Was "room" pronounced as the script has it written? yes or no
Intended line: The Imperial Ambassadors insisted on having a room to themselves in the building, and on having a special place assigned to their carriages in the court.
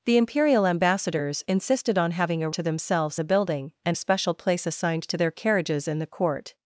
no